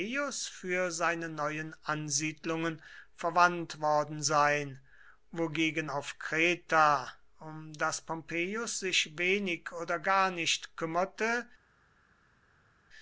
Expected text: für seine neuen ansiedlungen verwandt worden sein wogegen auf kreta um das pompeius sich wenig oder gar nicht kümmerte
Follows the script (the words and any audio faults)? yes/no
yes